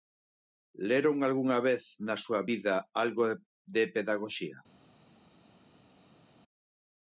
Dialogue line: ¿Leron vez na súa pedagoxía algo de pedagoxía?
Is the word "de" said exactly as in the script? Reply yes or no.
yes